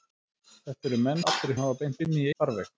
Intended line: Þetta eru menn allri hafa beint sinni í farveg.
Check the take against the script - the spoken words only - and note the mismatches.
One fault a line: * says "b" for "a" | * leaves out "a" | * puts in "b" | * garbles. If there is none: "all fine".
all fine